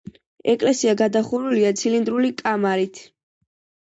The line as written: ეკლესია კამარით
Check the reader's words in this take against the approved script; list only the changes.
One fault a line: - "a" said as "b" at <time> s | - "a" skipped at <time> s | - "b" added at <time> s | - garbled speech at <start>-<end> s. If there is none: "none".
- "გადახურულია ცილინდრული" added at 1.0 s